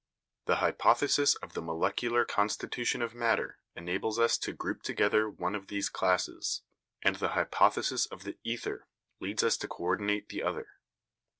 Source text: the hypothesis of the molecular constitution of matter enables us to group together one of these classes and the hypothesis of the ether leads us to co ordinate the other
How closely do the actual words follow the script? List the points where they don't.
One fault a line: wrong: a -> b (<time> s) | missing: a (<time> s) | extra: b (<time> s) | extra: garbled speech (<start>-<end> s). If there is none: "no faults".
no faults